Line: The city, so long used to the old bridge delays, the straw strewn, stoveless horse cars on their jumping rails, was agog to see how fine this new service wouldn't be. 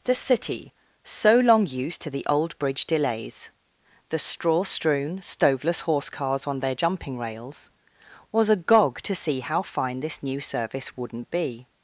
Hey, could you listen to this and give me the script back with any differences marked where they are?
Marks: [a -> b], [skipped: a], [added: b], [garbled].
The city, so long used to the old bridge delays, the straw strewn, stoveless horse cars on their jumping rails, was agog to see how fine this new service wouldn't be.